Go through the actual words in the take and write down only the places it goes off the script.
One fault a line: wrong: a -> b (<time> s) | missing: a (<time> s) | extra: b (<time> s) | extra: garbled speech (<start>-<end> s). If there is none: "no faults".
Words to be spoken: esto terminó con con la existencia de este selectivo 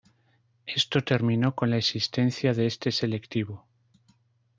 missing: con (1.7 s)